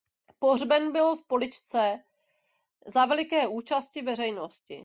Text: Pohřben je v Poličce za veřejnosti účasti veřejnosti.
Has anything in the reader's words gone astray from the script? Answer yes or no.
yes